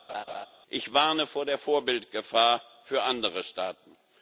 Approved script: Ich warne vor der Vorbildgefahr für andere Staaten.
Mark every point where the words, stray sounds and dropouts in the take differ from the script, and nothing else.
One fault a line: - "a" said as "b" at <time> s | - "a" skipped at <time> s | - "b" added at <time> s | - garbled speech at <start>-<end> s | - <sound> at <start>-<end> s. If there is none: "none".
- laugh at 0.1-0.5 s